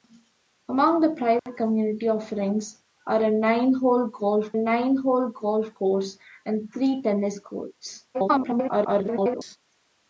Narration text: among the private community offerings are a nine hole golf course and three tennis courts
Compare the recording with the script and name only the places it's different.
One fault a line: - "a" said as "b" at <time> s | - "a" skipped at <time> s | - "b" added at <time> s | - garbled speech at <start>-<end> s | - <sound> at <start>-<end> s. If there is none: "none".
- dropout at 1.4-1.5 s
- "nine hole golf" added at 4.5 s
- garbled speech at 8.1-9.6 s